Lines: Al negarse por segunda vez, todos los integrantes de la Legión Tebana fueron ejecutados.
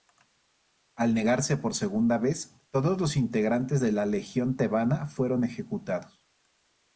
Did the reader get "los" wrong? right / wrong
right